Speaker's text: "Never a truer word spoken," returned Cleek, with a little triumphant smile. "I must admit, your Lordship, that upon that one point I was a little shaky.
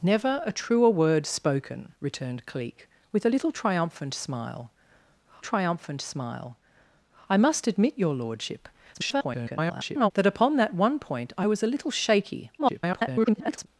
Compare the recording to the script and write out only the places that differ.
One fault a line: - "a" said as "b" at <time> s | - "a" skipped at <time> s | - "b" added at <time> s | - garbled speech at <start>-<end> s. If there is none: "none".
- "triumphant smile" added at 5.4 s
- garbled speech at 8.9-10.1 s
- garbled speech at 12.6-13.7 s